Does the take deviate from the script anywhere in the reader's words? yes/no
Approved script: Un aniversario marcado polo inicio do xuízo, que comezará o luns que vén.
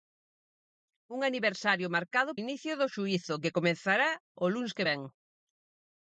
yes